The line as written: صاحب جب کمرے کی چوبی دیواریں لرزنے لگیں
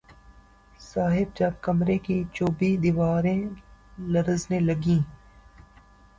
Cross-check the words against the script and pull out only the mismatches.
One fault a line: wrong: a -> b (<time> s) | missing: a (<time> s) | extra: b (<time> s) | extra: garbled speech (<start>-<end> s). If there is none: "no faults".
no faults